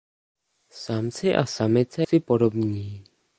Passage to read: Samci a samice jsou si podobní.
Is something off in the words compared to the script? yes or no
yes